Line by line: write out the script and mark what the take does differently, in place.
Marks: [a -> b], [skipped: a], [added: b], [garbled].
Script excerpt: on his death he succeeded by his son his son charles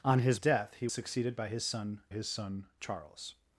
on his death he succeeded by his son his son charles